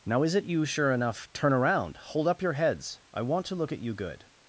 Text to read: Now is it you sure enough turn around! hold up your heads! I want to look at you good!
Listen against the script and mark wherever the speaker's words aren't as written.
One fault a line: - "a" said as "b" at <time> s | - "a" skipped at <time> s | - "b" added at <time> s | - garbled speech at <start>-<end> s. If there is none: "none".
none